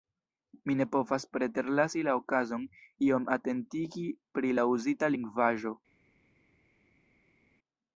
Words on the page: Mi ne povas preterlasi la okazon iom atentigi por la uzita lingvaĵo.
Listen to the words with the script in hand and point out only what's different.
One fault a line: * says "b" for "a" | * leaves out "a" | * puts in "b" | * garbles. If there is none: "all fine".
* says "pri" for "por"